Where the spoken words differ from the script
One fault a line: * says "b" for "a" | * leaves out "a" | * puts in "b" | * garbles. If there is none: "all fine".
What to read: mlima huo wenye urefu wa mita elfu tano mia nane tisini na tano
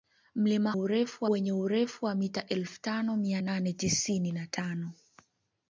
* says "urefu" for "huo"